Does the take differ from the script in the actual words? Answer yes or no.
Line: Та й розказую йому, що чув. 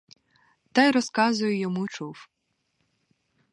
yes